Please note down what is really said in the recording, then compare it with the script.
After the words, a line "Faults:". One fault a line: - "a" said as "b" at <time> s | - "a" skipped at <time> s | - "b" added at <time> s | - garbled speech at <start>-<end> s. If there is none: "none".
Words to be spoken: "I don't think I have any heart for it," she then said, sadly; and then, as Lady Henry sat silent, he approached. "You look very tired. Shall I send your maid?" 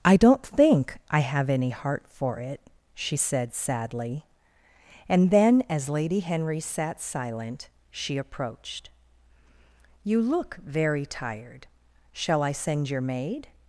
"I don't think I have any heart for it," she said, sadly; and then, as Lady Henry sat silent, she approached. "You look very tired. Shall I send your maid?"
Faults:
- "then" skipped at 3.1 s
- "he" said as "she" at 7.9 s